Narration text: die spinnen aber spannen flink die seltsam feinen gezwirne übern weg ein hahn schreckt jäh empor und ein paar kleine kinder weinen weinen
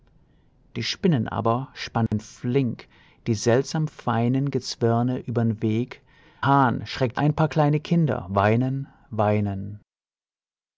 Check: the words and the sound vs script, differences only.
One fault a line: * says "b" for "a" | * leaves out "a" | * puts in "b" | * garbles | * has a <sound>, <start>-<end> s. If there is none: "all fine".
* has a dropout, 2.1-2.1 s
* leaves out "ein"
* leaves out "jäh empor und"